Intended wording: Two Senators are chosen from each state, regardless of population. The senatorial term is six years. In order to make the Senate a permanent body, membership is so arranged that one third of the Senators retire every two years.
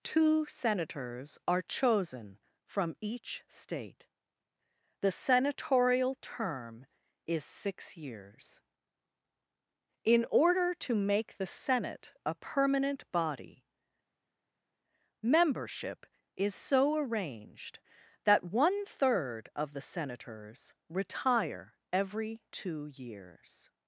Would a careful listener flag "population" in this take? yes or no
yes